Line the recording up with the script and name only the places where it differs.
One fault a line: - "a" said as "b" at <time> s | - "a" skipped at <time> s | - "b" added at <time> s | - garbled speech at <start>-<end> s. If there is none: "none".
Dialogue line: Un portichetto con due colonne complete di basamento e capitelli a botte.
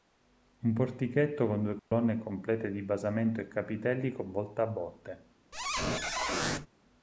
- "con volta" added at 4.1 s